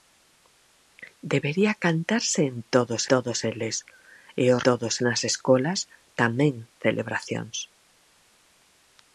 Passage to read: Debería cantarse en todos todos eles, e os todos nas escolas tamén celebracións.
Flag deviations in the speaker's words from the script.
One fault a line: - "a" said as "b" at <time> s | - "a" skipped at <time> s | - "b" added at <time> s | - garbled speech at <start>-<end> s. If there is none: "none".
none